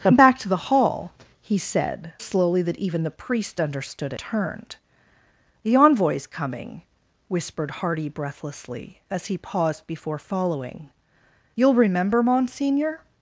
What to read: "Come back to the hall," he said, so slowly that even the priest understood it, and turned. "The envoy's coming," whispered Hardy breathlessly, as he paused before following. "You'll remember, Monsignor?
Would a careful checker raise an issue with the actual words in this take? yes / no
yes